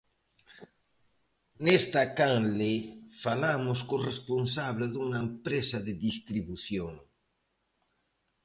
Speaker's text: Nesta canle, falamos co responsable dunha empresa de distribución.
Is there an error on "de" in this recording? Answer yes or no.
no